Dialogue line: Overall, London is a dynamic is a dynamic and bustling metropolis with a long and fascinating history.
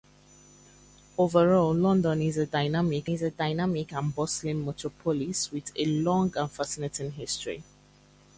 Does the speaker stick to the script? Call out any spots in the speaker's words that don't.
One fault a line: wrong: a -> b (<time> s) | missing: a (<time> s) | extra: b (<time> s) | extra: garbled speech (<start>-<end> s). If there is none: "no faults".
no faults